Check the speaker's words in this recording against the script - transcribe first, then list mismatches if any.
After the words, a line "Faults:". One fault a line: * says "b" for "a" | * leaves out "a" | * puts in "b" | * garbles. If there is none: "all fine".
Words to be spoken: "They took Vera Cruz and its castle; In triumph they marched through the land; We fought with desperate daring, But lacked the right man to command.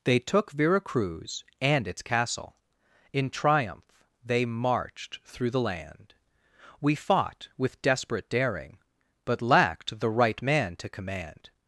"They took Vera Cruz and its castle; In triumph they marched through the land; We fought with desperate daring, But lacked the right man to command.
Faults:
all fine